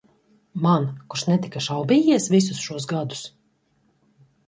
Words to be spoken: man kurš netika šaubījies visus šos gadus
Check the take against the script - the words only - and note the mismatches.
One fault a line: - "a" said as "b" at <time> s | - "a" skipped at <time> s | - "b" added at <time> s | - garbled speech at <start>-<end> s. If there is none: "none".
none